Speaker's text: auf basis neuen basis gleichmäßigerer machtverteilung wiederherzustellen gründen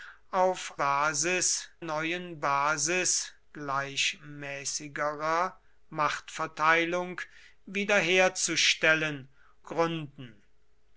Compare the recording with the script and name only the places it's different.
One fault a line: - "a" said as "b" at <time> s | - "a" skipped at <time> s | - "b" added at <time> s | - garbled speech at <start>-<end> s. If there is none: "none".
none